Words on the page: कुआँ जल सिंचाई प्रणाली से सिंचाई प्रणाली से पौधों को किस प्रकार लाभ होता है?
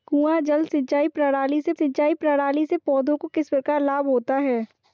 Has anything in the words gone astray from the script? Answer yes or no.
no